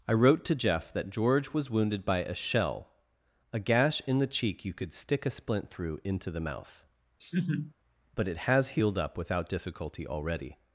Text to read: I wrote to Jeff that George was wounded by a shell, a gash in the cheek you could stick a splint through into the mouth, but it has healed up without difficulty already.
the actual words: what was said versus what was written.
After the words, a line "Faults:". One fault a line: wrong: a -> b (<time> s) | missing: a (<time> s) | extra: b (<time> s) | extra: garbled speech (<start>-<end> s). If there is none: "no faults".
I wrote to Jeff that George was wounded by a shell, a gash in the cheek you could stick a splint through into the mouth, but it has healed up without difficulty already.
Faults:
no faults